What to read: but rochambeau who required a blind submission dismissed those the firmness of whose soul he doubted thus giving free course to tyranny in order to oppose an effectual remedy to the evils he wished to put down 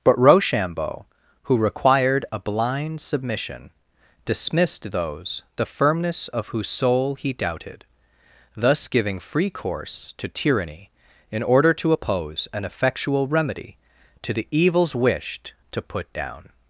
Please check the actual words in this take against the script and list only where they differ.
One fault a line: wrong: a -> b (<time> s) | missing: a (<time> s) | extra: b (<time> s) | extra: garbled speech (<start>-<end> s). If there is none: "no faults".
missing: he (14.9 s)